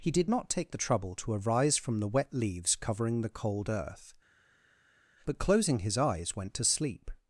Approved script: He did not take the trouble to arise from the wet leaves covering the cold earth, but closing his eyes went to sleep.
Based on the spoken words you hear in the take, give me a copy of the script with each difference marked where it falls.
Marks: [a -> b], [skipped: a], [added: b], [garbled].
He did not take the trouble to arise from the wet leaves covering the cold earth, but closing his eyes went to sleep.